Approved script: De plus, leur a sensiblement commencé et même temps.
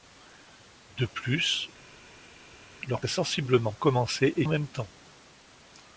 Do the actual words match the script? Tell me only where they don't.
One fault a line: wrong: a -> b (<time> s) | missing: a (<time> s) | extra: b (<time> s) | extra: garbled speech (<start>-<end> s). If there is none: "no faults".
no faults